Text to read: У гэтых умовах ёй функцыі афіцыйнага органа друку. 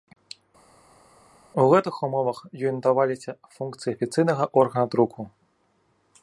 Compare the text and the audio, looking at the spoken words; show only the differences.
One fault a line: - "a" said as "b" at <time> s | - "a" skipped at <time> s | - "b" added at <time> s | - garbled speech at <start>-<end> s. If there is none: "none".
- "надаваліся" added at 2.8 s